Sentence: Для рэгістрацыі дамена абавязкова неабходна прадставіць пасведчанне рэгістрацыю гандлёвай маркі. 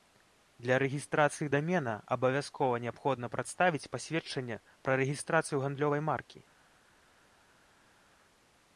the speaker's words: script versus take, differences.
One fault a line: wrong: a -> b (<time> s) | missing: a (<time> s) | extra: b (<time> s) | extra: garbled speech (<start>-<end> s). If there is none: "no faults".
extra: пра (4.9 s)